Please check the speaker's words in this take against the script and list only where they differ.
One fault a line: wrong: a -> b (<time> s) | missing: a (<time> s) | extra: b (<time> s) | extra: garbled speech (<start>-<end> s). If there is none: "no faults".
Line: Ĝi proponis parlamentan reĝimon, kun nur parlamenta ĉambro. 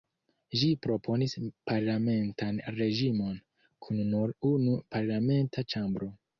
extra: unu (4.5 s)